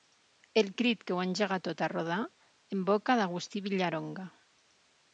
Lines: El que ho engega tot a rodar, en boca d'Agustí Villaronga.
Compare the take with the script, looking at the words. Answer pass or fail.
fail